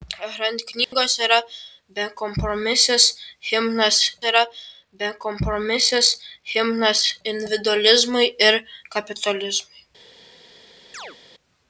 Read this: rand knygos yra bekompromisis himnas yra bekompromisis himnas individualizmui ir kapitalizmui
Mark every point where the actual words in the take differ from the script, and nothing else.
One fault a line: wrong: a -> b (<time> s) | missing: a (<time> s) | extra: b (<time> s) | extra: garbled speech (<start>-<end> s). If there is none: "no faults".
no faults